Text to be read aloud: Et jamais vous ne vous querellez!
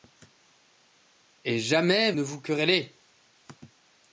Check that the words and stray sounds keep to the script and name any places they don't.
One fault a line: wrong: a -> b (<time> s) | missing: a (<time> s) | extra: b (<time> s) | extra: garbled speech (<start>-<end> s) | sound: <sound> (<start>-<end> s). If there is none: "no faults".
missing: vous (2.1 s)